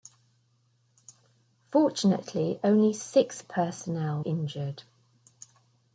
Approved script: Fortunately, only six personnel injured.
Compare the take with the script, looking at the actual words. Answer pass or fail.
pass